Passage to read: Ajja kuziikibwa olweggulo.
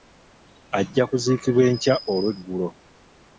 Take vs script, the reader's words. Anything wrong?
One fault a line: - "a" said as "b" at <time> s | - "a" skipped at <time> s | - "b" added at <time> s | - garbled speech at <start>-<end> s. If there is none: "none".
- "enkya" added at 1.7 s